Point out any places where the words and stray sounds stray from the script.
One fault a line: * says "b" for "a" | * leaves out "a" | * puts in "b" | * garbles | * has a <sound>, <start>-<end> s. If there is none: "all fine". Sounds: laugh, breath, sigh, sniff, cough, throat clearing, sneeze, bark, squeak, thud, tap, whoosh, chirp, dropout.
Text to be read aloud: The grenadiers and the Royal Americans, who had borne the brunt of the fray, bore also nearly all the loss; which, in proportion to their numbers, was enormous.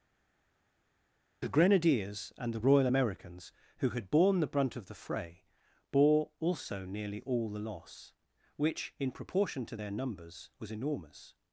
all fine